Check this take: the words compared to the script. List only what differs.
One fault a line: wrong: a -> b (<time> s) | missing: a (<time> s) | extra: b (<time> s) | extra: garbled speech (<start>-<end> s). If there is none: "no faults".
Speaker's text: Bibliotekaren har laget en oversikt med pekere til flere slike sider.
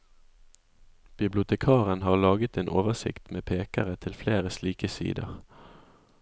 no faults